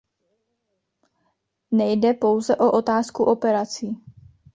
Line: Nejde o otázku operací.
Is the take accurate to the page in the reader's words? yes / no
no